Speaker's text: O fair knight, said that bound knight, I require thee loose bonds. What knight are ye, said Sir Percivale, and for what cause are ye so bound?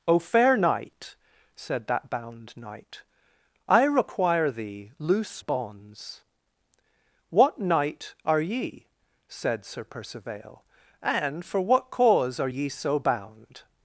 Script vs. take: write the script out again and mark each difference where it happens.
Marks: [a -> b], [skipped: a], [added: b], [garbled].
O fair knight, said that bound knight, I require thee loose bonds. What knight are ye, said Sir Percivale, and for what cause are ye so bound?